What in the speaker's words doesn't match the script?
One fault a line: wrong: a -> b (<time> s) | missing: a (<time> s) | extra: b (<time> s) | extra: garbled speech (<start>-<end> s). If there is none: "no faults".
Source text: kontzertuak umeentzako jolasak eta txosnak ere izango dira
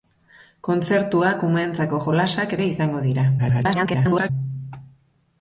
missing: eta txosnak (2.6 s)
extra: garbled speech (3.4-4.3 s)